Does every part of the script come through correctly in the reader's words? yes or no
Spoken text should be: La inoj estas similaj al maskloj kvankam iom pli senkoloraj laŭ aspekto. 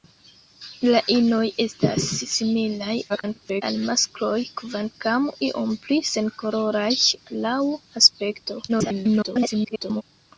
no